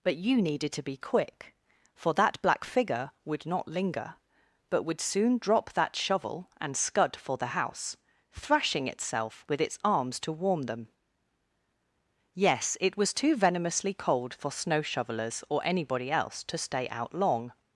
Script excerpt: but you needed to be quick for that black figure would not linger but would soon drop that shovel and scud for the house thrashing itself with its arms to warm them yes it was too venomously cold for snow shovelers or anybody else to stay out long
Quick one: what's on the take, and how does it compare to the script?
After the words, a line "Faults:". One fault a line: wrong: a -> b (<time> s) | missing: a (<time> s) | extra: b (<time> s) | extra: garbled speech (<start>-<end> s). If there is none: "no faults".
but you needed to be quick for that black figure would not linger but would soon drop that shovel and scud for the house thrashing itself with its arms to warm them yes it was too venomously cold for snow shovelers or anybody else to stay out long
Faults:
no faults